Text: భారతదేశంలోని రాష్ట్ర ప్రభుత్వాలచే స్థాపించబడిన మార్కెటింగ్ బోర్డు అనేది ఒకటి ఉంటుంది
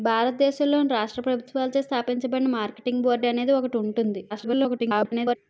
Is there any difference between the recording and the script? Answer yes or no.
yes